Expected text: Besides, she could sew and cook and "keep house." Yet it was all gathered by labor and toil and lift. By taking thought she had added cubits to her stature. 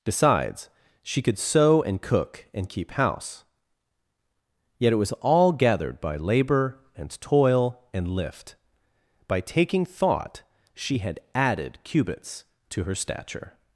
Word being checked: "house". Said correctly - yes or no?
yes